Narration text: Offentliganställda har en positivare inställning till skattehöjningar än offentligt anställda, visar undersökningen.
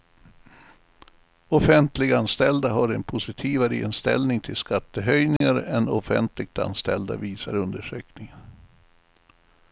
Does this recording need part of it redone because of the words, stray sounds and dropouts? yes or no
yes